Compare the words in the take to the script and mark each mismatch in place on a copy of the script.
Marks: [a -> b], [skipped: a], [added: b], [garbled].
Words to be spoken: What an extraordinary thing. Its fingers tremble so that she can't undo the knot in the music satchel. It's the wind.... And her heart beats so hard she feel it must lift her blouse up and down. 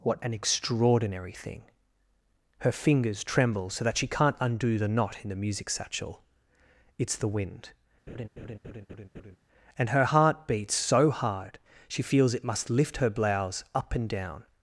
What an extraordinary thing. [Its -> Her] fingers tremble so that she can't undo the knot in the music satchel. It's the wind.... And her heart beats so hard she [feel -> feels] it must lift her blouse up and down.